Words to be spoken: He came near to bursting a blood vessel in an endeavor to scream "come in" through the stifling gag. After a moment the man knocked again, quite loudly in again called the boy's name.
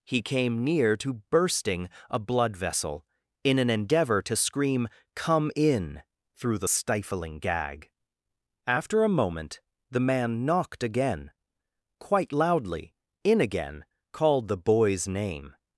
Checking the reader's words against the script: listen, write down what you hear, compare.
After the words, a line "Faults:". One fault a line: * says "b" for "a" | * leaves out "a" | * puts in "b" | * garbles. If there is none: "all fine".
He came near to bursting a blood vessel in an endeavor to scream "come in" through the stifling gag. After a moment the man knocked again, quite loudly in again called the boy's name.
Faults:
all fine